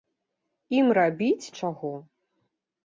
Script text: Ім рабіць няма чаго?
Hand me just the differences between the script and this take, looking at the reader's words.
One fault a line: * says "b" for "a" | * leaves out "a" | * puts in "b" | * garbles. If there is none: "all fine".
* leaves out "няма"